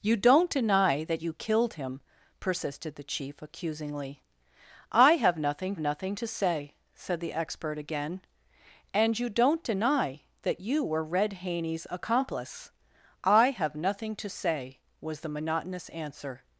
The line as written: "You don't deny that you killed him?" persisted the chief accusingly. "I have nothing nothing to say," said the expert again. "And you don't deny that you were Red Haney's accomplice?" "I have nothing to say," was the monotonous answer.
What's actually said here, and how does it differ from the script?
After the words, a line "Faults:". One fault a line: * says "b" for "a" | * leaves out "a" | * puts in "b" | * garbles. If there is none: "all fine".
"You don't deny that you killed him?" persisted the chief accusingly. "I have nothing nothing to say," said the expert again. "And you don't deny that you were Red Haney's accomplice?" "I have nothing to say," was the monotonous answer.
Faults:
all fine